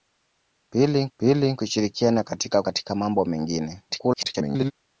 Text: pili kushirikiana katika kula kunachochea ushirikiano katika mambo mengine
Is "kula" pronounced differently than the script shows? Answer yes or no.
yes